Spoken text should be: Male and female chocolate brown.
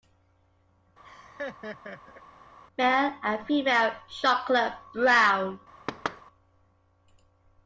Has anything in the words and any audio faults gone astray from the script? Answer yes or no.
yes